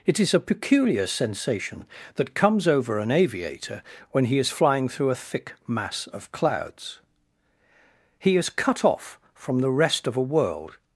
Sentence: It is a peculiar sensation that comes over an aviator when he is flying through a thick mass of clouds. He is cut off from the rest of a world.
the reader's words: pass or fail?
pass